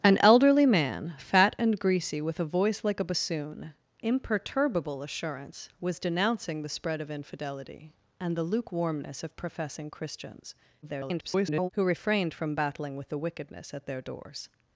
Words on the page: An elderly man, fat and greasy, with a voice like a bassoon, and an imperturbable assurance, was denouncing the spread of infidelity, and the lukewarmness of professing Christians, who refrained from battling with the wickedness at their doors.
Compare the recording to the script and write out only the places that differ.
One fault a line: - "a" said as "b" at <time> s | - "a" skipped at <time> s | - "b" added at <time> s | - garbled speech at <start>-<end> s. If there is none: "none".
- "and an" skipped at 3.7 s
- garbled speech at 10.8-11.7 s